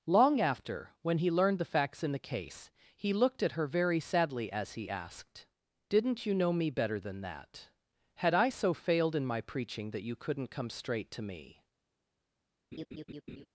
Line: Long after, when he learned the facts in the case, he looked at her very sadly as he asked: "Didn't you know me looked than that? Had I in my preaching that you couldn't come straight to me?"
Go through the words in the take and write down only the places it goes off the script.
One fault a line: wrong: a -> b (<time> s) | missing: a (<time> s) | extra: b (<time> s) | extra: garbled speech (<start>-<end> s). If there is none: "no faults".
wrong: looked -> better (6.7 s)
extra: so failed (8.5 s)